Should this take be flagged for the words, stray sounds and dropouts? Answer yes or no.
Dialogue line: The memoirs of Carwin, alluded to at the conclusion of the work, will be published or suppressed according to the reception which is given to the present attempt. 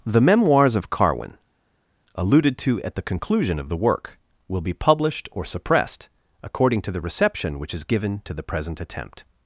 no